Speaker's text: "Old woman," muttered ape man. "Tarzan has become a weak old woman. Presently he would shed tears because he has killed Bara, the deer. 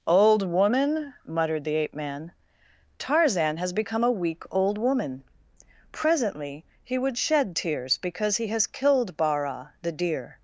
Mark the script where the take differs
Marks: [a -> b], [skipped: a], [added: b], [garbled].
"Old woman," muttered [added: the] ape man. "Tarzan has become a weak old woman. Presently he would shed tears because he has killed Bara, the deer.